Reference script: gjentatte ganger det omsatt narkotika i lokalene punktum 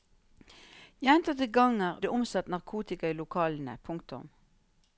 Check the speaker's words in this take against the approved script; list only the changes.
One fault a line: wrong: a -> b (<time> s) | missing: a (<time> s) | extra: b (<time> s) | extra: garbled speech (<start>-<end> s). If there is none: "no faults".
no faults